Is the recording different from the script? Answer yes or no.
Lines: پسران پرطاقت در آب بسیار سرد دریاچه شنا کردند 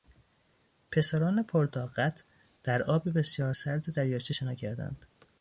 no